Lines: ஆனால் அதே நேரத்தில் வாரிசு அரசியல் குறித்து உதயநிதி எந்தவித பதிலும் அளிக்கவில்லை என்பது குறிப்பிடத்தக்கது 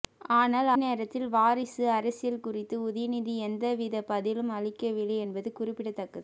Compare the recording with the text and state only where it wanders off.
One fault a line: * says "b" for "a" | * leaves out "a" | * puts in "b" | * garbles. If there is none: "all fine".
* leaves out "அதே"